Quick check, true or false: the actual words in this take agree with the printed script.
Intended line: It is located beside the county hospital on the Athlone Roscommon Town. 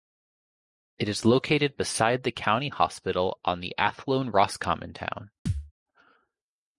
true